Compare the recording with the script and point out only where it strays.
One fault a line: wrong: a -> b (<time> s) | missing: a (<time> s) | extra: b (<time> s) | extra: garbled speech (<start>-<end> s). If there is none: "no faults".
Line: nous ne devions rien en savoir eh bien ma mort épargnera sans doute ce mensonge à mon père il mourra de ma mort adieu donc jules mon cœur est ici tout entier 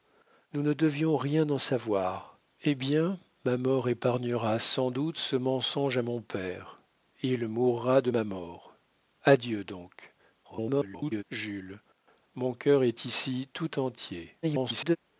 extra: garbled speech (10.4-11.2 s)
extra: garbled speech (14.4-15.0 s)